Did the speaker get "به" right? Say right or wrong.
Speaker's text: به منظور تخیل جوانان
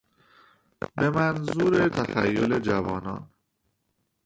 right